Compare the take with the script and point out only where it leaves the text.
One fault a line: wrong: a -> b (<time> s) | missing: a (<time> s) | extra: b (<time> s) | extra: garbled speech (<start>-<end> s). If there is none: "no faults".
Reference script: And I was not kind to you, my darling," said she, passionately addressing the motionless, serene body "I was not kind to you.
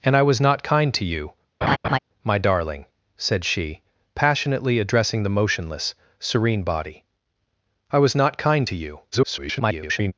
extra: garbled speech (9.1-10.1 s)